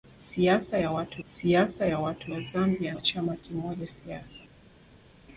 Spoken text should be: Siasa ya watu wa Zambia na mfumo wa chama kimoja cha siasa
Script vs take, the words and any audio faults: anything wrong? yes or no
yes